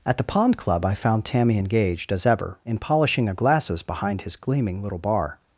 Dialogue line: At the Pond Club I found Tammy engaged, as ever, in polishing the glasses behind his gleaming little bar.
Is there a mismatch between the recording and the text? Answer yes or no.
yes